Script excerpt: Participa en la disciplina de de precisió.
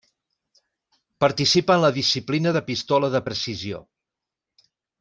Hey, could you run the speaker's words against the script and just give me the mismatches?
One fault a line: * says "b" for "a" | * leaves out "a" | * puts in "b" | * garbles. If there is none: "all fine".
* puts in "pistola"